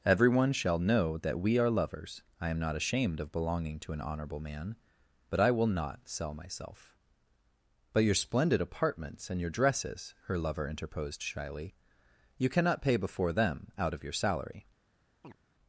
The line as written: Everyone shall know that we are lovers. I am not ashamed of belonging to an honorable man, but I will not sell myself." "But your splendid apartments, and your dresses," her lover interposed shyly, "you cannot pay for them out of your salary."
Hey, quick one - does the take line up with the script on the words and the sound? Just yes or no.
no